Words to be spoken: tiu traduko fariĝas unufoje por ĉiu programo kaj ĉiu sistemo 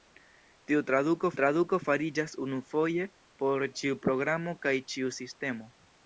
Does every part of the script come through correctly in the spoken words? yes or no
no